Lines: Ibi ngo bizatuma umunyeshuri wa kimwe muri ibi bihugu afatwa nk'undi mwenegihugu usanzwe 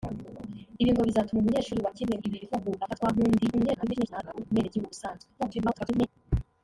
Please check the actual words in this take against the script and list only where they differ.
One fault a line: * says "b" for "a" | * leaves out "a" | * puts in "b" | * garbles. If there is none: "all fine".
* leaves out "muri"
* garbles
* garbles